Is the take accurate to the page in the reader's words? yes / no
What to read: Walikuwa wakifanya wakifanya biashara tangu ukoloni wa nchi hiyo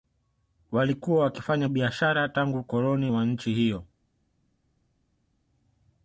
no